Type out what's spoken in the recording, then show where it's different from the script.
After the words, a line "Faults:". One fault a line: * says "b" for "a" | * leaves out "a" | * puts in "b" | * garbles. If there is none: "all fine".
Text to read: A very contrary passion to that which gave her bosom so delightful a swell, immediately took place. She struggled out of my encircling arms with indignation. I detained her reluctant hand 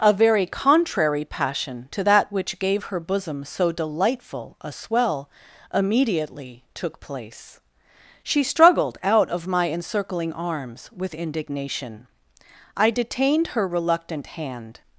A very contrary passion to that which gave her bosom so delightful a swell, immediately took place. She struggled out of my encircling arms with indignation. I detained her reluctant hand
Faults:
all fine